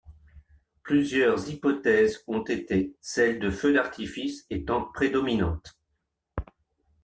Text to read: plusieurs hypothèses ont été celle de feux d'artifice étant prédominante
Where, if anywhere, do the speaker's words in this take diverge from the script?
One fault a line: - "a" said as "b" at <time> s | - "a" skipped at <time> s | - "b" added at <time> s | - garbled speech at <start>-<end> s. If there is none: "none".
none